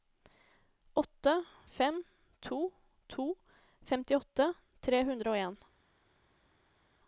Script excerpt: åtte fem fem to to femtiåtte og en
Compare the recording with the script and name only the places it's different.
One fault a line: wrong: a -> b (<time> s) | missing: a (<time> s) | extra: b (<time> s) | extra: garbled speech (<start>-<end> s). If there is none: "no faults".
missing: fem (2.0 s)
extra: tre hundre (4.8 s)